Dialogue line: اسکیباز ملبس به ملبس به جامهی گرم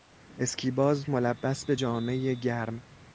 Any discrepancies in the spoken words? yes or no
yes